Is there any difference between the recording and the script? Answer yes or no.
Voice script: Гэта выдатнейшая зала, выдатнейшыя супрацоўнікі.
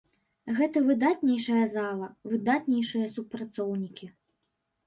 no